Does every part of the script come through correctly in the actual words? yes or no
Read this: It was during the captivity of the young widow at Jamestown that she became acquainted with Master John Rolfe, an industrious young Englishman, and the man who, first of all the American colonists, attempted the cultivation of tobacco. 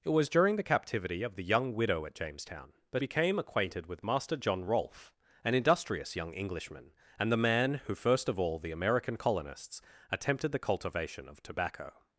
no